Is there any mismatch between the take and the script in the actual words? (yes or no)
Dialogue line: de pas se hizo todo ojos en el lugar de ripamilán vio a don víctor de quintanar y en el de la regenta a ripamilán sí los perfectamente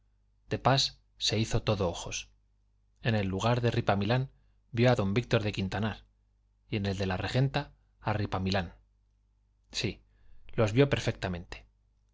yes